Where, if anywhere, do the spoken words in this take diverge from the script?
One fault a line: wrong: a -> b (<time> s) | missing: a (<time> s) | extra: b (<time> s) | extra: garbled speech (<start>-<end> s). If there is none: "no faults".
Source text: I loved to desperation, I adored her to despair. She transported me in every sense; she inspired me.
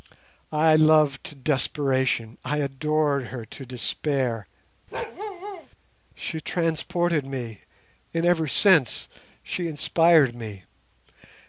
no faults